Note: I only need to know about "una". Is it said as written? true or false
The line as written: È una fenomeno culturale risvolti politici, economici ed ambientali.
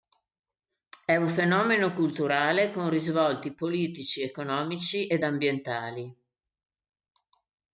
false